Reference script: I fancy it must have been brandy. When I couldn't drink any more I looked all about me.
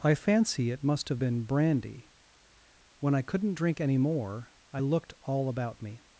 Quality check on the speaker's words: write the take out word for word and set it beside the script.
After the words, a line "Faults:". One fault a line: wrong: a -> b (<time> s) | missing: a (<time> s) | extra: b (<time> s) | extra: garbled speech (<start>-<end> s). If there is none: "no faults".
I fancy it must have been brandy. When I couldn't drink any more I looked all about me.
Faults:
no faults